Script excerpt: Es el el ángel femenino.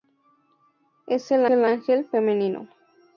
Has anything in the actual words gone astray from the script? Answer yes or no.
no